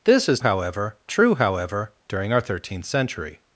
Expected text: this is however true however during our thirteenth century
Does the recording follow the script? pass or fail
pass